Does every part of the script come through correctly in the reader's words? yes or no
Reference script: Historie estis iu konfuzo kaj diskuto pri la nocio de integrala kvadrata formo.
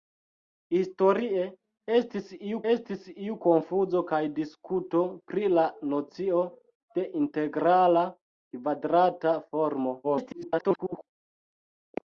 no